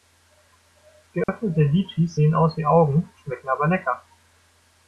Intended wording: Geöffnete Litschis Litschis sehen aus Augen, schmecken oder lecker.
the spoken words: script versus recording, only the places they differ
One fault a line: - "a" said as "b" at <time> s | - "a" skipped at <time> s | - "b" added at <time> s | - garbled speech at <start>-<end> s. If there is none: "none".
- "Litschis" skipped at 2.2 s
- "wie" added at 2.5 s
- "oder" said as "aber" at 3.5 s